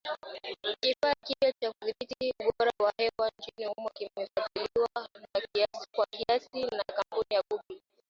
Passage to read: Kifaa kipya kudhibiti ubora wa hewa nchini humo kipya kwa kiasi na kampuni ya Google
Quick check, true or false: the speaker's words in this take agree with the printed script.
false